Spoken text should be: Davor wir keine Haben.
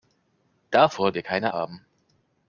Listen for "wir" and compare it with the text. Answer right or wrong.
right